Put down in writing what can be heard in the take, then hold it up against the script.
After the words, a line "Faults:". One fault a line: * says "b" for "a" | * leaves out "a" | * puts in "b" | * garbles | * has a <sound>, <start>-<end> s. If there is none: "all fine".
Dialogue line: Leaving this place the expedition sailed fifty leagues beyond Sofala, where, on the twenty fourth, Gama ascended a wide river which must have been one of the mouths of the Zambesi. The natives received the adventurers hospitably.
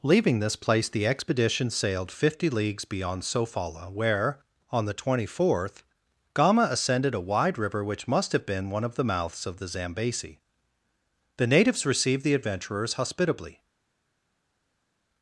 Leaving this place the expedition sailed fifty leagues beyond Sofala, where, on the twenty fourth, Gama ascended a wide river which must have been one of the mouths of the Zambesi. The natives received the adventurers hospitably.
Faults:
all fine